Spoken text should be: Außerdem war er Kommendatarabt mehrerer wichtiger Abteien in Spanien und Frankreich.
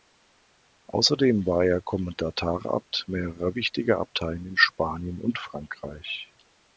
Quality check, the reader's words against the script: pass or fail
pass